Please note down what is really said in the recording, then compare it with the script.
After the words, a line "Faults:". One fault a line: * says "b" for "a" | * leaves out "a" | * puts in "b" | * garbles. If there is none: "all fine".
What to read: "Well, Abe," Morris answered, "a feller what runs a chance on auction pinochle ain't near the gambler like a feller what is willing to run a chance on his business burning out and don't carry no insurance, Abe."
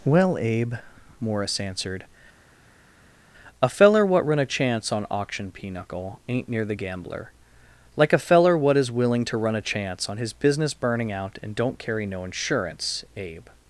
"Well, Abe," Morris answered, "a feller what run a chance on auction pinochle ain't near the gambler like a feller what is willing to run a chance on his business burning out and don't carry no insurance, Abe."
Faults:
* says "run" for "runs"